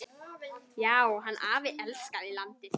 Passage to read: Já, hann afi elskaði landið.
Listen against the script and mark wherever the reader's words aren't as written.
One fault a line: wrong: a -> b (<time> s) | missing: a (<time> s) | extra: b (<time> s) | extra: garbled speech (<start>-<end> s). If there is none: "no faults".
no faults